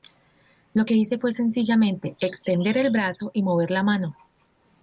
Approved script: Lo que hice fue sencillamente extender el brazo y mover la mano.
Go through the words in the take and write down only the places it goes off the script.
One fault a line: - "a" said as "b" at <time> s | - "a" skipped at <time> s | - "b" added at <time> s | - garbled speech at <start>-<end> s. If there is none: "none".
none